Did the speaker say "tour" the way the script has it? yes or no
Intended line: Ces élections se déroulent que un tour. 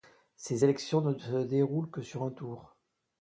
yes